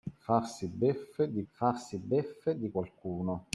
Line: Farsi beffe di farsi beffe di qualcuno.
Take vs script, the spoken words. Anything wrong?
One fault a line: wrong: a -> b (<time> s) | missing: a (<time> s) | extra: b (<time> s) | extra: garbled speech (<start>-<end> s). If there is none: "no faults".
no faults